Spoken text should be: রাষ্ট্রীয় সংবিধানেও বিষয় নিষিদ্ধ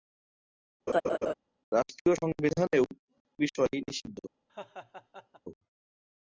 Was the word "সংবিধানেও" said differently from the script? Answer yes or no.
no